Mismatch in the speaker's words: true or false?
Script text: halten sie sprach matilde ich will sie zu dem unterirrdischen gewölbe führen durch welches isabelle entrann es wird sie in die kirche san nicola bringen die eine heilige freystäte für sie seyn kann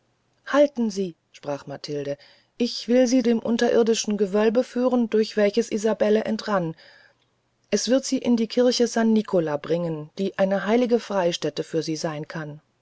true